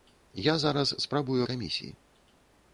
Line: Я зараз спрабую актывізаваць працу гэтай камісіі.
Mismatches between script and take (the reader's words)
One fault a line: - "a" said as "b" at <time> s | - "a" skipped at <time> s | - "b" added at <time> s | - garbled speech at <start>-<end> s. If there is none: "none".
- "актывізаваць працу гэтай" skipped at 1.4 s